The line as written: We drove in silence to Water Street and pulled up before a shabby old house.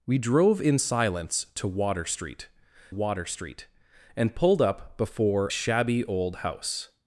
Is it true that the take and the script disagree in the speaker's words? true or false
true